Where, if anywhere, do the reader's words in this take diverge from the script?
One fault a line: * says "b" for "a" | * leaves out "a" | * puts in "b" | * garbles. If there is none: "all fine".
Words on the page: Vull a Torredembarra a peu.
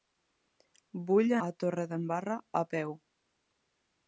all fine